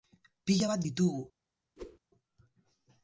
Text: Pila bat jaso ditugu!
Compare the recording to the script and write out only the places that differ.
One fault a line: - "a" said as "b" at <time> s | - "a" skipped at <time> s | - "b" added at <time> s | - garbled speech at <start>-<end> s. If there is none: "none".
- "jaso" skipped at 0.8 s